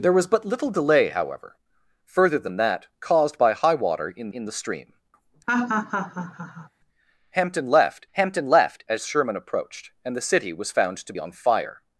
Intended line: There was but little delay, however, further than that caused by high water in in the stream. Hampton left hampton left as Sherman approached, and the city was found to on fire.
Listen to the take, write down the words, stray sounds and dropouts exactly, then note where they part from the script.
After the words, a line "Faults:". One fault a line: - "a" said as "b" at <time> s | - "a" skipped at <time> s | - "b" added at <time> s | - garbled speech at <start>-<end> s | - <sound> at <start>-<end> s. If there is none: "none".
There was but little delay, however, further than that caused by high water in in the stream. Hampton left hampton left as Sherman approached, and the city was found to on fire.
Faults:
- laugh at 5.5-6.7 s